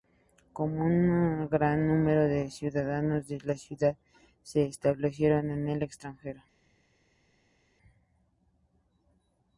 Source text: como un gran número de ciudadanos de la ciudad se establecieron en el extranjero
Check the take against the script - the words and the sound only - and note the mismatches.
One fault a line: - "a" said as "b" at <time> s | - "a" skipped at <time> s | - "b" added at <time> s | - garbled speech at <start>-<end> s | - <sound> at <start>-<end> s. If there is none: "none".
none